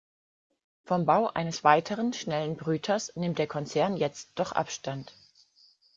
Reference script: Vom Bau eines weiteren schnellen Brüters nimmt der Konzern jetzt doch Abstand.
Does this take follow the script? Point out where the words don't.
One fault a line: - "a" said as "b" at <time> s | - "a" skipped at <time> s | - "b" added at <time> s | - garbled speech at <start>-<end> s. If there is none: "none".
none